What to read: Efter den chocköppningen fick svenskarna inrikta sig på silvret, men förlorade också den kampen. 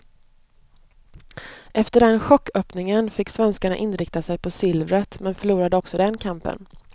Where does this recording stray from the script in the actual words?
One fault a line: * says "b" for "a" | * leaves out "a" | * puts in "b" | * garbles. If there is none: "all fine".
all fine